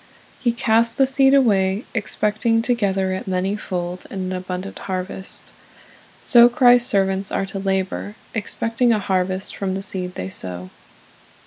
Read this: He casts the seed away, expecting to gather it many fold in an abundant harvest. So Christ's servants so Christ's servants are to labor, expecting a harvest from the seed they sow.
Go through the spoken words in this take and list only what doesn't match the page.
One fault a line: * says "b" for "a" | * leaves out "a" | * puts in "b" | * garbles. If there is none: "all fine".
* leaves out "so Christ's servants"